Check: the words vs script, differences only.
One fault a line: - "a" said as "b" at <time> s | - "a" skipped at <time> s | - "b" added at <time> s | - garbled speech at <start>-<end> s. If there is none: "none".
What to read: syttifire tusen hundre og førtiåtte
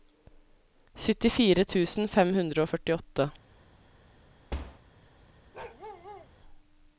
- "fem" added at 2.2 s